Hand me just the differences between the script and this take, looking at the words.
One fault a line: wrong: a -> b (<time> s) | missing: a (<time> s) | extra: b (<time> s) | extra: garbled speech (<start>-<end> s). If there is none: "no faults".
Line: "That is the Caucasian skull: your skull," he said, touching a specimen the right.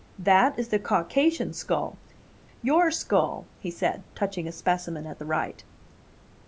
extra: at (5.1 s)